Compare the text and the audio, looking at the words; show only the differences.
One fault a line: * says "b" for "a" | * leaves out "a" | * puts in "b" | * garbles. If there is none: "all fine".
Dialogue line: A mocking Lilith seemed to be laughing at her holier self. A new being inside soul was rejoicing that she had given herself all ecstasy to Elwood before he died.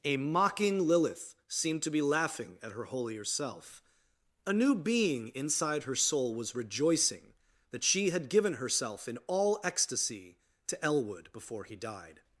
* puts in "her"
* puts in "in"